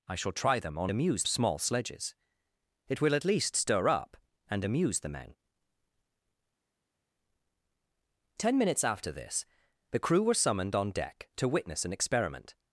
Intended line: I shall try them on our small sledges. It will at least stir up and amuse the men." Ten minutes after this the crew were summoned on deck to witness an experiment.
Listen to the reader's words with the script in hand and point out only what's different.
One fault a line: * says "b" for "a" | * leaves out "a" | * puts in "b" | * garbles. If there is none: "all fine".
* says "amuse" for "our"